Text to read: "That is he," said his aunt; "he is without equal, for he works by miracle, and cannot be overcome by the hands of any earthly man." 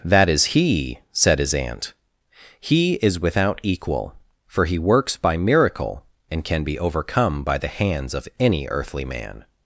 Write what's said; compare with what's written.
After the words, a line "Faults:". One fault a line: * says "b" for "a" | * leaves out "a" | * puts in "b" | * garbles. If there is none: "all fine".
"That is he," said his aunt; "he is without equal, for he works by miracle, and can be overcome by the hands of any earthly man."
Faults:
* says "can" for "cannot"